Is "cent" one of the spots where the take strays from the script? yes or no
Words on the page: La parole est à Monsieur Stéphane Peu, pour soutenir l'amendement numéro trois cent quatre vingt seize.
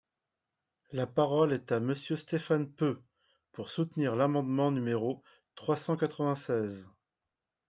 no